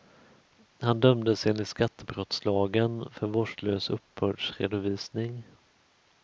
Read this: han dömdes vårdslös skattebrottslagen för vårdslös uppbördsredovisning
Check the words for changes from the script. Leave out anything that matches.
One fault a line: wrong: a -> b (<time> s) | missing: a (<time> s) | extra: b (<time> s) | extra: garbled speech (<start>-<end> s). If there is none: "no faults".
wrong: vårdslös -> enligt (1.5 s)